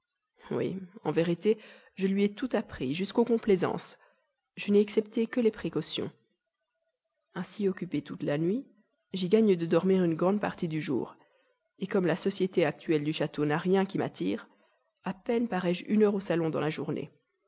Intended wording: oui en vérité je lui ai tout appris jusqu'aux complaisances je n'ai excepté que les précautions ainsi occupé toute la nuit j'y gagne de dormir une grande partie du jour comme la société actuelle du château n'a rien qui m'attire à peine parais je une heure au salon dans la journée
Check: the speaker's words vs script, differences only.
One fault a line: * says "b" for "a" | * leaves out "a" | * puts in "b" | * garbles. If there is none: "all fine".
all fine